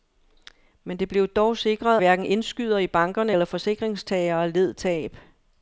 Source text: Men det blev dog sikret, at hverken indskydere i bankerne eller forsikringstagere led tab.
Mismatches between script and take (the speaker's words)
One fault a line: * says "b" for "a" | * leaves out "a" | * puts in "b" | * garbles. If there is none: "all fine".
* leaves out "at"